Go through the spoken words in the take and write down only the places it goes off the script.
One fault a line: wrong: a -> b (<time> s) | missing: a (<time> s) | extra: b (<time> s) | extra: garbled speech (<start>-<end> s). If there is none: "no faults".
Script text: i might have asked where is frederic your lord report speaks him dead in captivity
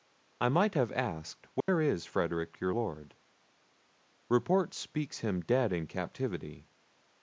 no faults